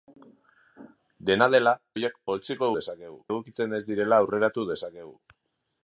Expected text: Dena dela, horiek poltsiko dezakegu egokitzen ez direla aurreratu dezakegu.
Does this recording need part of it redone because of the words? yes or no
no